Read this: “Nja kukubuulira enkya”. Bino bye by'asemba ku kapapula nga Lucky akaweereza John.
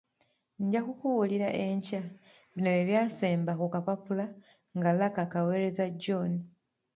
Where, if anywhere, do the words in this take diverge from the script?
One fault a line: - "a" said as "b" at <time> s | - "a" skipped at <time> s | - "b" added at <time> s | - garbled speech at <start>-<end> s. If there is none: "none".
none